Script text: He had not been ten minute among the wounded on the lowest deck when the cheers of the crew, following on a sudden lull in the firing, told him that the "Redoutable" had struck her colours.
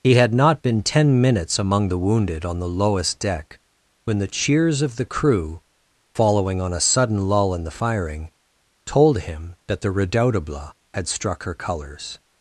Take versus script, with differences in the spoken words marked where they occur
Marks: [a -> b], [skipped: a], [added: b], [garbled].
He had not been ten [minute -> minutes] among the wounded on the lowest deck when the cheers of the crew, following on a sudden lull in the firing, told him that the "Redoutable" had struck her colours.